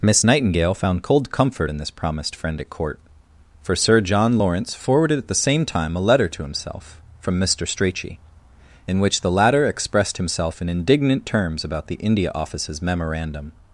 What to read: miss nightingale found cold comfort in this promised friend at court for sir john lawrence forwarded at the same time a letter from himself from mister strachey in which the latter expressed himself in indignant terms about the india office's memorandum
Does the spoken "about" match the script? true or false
true